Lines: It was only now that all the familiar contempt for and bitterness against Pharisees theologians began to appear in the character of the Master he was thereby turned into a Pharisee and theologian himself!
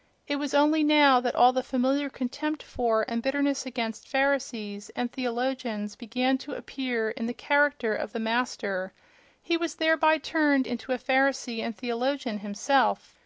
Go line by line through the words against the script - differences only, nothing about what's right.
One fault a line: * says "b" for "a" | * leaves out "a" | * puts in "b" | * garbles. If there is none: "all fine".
* puts in "and"